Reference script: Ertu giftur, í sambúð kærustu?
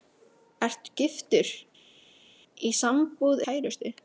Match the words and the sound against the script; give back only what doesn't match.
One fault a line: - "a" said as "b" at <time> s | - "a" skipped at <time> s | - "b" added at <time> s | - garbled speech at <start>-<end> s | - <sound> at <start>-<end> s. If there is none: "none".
none